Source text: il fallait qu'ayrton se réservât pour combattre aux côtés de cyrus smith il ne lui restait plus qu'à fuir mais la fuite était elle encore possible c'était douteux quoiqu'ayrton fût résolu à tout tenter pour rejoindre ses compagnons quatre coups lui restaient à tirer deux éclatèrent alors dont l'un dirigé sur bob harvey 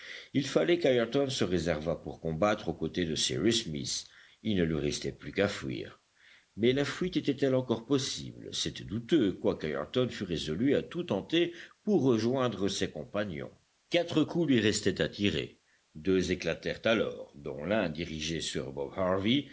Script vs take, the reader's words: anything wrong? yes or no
no